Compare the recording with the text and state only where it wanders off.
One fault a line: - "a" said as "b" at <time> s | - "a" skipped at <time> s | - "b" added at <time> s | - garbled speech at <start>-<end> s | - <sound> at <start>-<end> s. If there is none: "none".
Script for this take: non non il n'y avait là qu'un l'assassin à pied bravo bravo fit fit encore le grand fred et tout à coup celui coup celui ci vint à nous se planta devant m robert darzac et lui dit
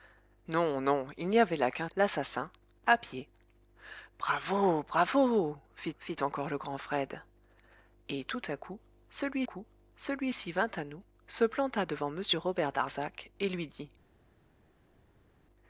none